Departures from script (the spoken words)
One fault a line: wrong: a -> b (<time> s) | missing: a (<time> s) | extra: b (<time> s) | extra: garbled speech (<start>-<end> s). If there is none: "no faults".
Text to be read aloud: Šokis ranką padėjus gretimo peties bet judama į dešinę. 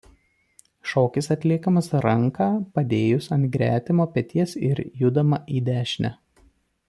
extra: atliekamas (1.4 s)
extra: ant (3.4 s)
wrong: bet -> ir (4.7 s)